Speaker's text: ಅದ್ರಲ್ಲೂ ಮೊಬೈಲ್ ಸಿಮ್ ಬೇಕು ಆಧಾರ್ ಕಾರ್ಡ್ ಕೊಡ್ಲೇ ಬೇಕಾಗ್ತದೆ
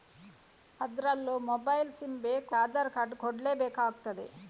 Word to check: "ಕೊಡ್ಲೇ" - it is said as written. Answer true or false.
true